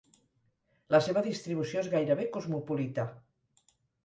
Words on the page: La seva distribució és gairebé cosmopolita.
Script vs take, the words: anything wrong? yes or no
no